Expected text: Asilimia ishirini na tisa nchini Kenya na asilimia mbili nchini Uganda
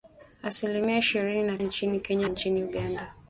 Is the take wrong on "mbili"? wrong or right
wrong